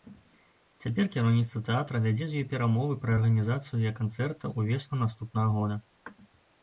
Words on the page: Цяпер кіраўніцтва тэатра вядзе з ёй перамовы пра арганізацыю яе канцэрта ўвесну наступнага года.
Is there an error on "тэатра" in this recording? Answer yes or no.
no